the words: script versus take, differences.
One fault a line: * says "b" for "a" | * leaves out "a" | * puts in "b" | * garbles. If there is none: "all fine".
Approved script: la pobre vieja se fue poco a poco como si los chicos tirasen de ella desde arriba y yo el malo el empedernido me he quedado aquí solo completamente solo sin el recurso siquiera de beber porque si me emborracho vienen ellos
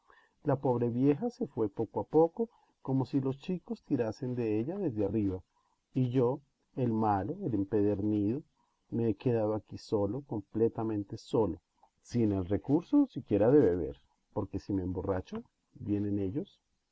all fine